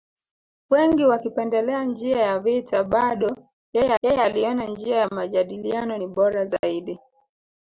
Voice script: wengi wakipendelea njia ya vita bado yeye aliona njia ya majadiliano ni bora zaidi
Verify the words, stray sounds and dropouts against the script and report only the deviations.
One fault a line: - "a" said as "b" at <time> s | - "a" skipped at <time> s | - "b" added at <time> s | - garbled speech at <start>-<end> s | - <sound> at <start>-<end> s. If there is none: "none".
- "yeye" added at 4.0 s
- dropout at 6.6-6.6 s